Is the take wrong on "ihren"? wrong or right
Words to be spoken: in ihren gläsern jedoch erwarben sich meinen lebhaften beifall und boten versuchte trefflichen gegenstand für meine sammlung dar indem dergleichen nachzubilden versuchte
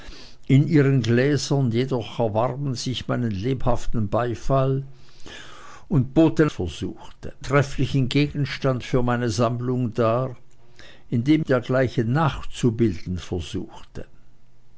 right